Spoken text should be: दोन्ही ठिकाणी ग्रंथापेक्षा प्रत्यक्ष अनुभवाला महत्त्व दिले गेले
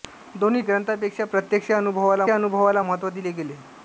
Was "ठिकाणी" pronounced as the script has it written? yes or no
no